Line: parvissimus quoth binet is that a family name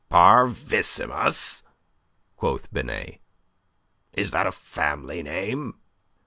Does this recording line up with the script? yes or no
yes